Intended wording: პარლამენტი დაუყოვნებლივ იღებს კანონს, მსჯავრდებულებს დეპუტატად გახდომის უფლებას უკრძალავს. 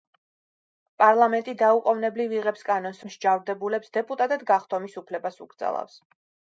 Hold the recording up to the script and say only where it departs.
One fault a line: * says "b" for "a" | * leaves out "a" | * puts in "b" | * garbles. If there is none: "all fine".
all fine